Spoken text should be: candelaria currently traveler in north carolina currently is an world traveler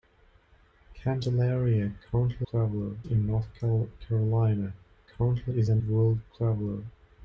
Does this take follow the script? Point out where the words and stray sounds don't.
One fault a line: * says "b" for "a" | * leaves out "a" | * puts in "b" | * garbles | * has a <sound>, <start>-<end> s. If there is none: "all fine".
all fine